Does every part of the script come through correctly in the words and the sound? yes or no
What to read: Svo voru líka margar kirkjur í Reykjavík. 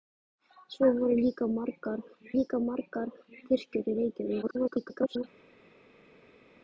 no